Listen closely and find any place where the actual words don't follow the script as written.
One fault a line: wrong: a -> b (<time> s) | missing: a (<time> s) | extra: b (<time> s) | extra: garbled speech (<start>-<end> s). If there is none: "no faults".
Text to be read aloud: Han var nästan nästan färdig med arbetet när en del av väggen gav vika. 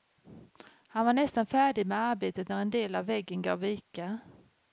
missing: nästan (1.4 s)